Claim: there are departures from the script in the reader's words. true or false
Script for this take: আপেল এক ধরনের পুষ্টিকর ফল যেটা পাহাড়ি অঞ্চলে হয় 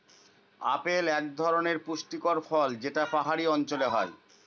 false